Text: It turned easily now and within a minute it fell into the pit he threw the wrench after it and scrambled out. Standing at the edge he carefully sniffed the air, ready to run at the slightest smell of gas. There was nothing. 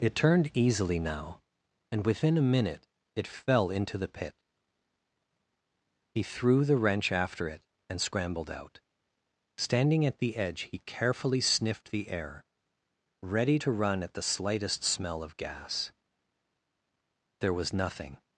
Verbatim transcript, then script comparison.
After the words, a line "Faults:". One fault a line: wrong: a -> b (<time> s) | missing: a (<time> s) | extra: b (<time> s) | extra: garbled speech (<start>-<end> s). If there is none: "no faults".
It turned easily now and within a minute it fell into the pit he threw the wrench after it and scrambled out. Standing at the edge he carefully sniffed the air, ready to run at the slightest smell of gas. There was nothing.
Faults:
no faults